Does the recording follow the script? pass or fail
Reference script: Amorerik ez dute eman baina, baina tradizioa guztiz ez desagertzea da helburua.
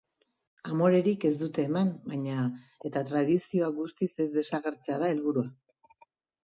fail